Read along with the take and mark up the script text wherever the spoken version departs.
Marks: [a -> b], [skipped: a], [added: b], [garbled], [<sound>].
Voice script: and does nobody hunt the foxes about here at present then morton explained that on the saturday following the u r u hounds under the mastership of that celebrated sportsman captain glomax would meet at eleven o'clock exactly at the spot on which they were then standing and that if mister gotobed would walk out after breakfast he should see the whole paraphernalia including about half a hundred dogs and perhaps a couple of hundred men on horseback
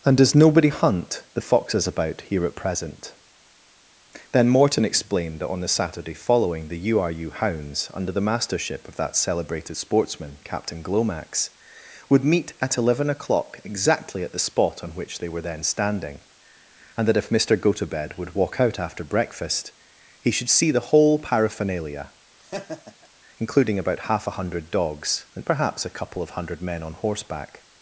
and does nobody hunt the foxes about here at present then morton explained that on the saturday following the u r u hounds under the mastership of that celebrated sportsman captain glomax would meet at eleven o'clock exactly at the spot on which they were then standing and that if mister gotobed would walk out after breakfast he should see the whole paraphernalia [laugh] including about half a hundred dogs and perhaps a couple of hundred men on horseback